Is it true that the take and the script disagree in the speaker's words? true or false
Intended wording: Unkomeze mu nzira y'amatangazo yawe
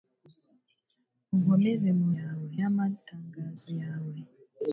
true